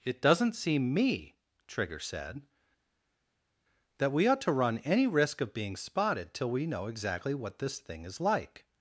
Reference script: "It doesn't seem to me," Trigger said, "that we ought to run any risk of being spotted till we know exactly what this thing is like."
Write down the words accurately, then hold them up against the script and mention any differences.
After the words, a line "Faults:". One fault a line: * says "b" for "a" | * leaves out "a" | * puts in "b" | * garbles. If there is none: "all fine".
"It doesn't seem me," Trigger said, "that we ought to run any risk of being spotted till we know exactly what this thing is like."
Faults:
* leaves out "to"